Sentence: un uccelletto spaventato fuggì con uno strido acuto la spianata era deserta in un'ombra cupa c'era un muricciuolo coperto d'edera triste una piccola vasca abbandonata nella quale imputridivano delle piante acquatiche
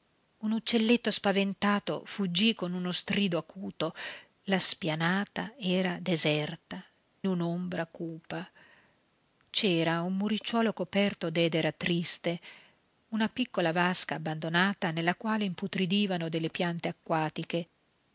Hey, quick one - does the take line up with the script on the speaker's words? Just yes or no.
no